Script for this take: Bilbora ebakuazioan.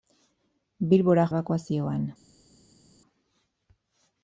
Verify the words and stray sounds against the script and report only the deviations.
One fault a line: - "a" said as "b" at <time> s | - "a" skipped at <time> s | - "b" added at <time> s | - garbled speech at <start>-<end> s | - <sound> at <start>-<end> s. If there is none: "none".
none